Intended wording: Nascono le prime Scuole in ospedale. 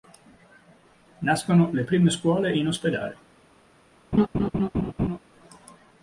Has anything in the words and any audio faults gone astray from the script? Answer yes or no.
yes